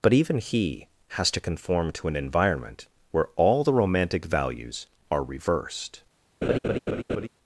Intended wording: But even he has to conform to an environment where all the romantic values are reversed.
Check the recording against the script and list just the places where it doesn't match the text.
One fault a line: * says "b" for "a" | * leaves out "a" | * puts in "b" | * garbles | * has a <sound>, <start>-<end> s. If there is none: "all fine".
* has a laugh, 6.4-7.3 s